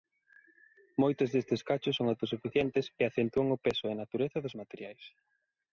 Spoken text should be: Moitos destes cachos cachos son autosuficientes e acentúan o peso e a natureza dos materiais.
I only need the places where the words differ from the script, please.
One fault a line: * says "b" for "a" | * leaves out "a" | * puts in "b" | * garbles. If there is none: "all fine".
* leaves out "cachos"